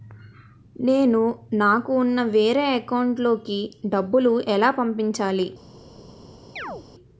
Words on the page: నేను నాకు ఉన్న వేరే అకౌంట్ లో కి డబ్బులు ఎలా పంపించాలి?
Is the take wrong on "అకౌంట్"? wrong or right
right